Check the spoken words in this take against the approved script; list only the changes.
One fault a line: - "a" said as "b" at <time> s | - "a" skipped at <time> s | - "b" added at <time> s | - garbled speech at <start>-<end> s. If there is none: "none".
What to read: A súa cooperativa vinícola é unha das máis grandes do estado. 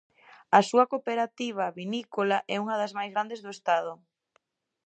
none